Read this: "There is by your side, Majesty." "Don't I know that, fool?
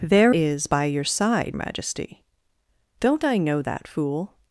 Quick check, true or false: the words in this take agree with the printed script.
true